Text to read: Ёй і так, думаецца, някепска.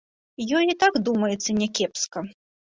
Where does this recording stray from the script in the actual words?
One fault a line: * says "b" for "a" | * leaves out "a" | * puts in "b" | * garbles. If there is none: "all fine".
all fine